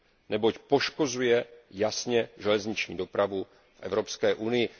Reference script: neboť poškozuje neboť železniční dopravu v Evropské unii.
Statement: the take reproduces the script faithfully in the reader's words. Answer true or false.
false